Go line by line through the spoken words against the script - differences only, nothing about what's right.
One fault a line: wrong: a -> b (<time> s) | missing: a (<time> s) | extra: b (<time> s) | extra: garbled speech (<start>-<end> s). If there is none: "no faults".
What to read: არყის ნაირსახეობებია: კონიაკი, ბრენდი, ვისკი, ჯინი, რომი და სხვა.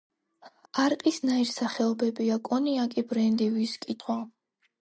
missing: ჯინი რომი და (4.0 s)